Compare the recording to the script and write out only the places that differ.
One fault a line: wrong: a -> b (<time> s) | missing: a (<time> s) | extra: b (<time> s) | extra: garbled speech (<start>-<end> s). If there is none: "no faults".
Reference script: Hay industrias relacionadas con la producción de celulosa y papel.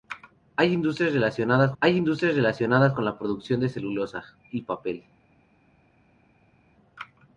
extra: hay industrias relacionadas (1.8 s)